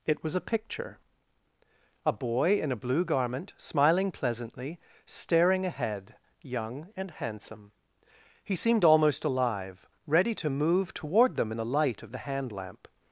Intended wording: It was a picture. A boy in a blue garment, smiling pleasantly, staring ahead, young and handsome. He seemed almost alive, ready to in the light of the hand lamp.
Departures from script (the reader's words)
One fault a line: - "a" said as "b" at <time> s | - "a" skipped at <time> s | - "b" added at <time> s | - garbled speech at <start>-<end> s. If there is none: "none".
- "move toward them" added at 10.5 s